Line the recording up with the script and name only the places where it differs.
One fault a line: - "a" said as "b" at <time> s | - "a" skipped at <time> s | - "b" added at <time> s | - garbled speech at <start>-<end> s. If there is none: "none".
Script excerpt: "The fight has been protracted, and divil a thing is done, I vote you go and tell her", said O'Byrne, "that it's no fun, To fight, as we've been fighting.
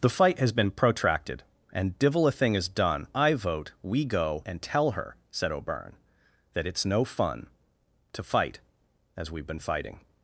- "you" said as "we" at 3.8 s